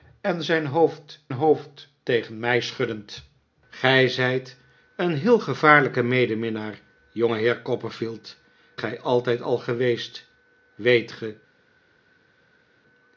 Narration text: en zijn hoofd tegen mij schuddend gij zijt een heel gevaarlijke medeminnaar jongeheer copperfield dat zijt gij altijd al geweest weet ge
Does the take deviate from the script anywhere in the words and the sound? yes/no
yes